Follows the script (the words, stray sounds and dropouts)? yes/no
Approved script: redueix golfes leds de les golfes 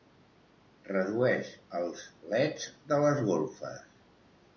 no